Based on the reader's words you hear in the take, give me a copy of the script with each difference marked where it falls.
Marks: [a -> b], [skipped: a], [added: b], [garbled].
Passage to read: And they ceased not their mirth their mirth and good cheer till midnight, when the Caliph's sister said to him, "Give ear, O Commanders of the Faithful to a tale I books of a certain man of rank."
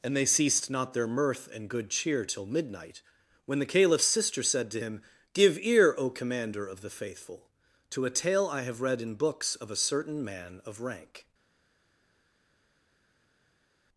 And they ceased not their mirth [skipped: their mirth] and good cheer till midnight, when the Caliph's sister said to him, "Give ear, O [Commanders -> Commander] of the Faithful to a tale I [added: have read in] books of a certain man of rank."